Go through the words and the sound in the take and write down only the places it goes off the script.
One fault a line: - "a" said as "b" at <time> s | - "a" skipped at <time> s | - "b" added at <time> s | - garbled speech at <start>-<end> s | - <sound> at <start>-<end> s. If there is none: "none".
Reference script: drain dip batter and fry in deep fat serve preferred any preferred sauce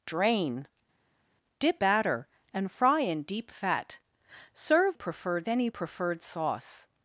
none